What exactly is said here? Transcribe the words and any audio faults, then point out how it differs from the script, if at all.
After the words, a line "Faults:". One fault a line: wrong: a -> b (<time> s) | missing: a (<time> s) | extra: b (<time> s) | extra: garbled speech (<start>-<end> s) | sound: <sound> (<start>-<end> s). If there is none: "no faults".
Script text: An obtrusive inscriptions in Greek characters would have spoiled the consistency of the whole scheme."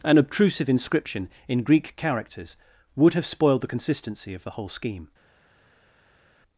An obtrusive inscription in Greek characters would have spoiled the consistency of the whole scheme."
Faults:
wrong: inscriptions -> inscription (0.7 s)